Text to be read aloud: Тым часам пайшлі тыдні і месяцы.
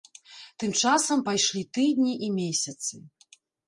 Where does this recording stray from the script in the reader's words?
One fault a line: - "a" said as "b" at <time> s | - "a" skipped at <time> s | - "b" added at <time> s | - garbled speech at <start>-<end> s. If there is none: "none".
none